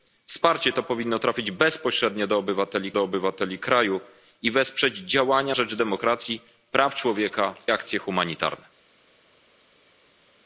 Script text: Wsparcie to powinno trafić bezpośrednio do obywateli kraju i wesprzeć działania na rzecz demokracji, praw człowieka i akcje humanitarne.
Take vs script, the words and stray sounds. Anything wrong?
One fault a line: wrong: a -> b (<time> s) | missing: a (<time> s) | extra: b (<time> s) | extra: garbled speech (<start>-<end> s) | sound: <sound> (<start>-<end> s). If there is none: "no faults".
extra: do obywateli (2.9 s)
missing: na (5.6 s)
missing: i (7.5 s)